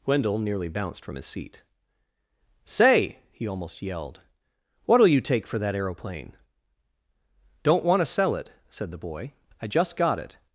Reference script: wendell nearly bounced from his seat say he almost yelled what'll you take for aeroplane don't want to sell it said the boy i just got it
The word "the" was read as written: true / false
true